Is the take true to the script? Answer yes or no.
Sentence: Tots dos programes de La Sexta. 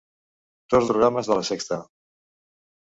no